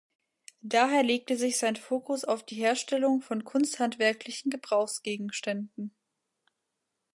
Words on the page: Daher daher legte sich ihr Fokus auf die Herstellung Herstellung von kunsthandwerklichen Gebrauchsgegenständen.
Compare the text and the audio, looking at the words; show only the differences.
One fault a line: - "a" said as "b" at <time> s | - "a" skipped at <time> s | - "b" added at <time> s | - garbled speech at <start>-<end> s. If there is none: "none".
- "daher" skipped at 1.0 s
- "ihr" said as "sein" at 1.6 s
- "Herstellung" skipped at 3.2 s